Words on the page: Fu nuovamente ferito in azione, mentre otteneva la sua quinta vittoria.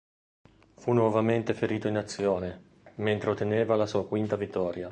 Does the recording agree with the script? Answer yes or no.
yes